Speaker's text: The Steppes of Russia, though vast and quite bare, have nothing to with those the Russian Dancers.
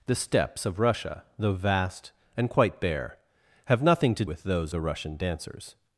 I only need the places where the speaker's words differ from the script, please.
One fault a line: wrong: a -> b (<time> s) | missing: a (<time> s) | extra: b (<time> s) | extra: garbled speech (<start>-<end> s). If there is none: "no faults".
no faults